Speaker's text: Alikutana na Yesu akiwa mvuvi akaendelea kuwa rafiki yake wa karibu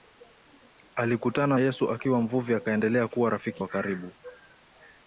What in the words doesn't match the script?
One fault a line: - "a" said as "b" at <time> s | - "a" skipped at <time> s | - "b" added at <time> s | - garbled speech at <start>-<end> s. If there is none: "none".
- "na" skipped at 1.6 s
- "yake" skipped at 3.6 s